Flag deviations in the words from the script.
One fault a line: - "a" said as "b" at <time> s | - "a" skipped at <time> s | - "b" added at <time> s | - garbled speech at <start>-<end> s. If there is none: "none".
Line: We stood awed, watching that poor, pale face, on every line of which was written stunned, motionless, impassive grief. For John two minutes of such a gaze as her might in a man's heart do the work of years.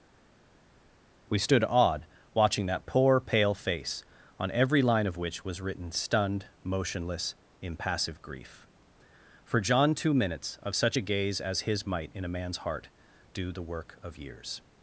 - "her" said as "his" at 11.6 s